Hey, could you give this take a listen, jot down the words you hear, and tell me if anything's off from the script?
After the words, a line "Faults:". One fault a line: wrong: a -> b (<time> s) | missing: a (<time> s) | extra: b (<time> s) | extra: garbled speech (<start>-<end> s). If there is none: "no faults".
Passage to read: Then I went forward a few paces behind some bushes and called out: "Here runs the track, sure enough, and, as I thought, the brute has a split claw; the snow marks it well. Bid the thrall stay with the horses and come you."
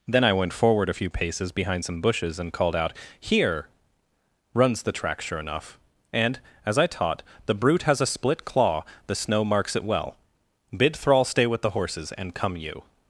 Then I went forward a few paces behind some bushes and called out: "Here runs the track, sure enough, and, as I taught, the brute has a split claw; the snow marks it well. Bid thrall stay with the horses and come you."
Faults:
wrong: thought -> taught (6.9 s)
missing: the (11.0 s)